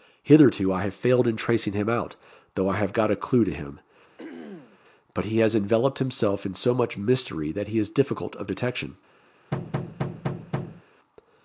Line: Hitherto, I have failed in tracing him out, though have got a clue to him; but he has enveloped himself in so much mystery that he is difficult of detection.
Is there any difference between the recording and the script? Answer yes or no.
yes